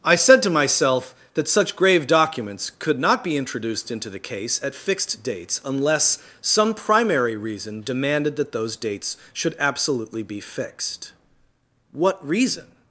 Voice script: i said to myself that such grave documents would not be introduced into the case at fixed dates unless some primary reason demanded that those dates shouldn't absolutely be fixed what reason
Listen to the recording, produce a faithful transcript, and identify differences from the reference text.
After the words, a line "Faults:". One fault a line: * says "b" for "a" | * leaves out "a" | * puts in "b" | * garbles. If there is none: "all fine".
i said to myself that such grave documents could not be introduced into the case at fixed dates unless some primary reason demanded that those dates should absolutely be fixed what reason
Faults:
* says "could" for "would"
* says "should" for "shouldn't"